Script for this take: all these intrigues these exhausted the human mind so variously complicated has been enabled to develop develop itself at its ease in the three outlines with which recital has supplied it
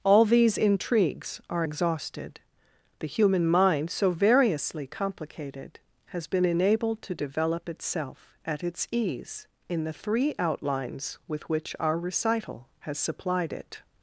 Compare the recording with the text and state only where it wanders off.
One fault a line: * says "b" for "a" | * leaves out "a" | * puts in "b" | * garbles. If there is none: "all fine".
* says "are" for "these"
* leaves out "develop"
* puts in "our"